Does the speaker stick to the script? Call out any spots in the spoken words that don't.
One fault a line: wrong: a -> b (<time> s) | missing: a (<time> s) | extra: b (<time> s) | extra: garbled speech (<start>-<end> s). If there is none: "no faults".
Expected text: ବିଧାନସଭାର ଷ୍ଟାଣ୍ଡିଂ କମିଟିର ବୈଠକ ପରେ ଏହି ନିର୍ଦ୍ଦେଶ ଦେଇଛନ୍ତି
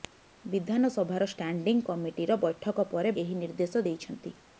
no faults